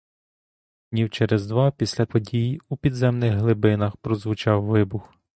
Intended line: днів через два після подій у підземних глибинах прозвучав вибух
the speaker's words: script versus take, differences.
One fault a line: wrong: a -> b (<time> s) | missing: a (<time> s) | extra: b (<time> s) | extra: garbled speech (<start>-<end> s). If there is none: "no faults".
no faults